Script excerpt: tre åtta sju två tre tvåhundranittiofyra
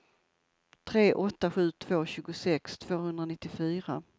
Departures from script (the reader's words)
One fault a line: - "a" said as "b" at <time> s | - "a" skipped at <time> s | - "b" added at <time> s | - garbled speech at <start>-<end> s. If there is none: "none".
- "tre" said as "tjugosex" at 2.1 s